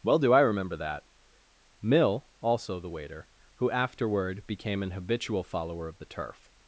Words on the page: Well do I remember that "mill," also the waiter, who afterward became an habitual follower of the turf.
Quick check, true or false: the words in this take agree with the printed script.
true